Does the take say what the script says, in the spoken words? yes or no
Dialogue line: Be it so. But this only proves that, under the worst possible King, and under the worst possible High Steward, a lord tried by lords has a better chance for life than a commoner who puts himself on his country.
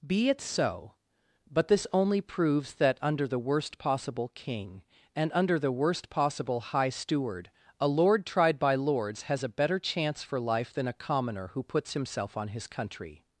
yes